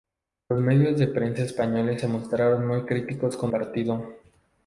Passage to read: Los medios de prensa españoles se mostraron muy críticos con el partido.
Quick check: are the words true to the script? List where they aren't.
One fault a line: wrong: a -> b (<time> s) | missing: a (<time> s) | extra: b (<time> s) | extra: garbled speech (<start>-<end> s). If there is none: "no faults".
missing: el (3.5 s)